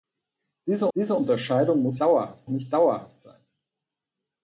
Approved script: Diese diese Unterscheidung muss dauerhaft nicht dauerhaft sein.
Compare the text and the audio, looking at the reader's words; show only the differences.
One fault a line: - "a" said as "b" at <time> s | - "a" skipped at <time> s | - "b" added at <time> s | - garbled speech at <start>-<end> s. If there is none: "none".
none